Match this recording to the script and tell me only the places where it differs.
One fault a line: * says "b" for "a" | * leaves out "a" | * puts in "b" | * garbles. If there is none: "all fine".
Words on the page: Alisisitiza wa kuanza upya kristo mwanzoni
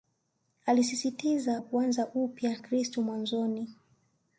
all fine